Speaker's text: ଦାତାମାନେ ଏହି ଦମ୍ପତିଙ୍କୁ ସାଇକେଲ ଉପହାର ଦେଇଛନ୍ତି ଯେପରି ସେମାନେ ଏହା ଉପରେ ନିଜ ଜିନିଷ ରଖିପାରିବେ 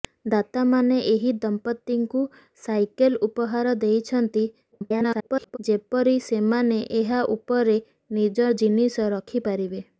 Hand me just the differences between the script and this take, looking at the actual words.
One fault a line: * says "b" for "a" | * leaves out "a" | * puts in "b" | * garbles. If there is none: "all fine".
* garbles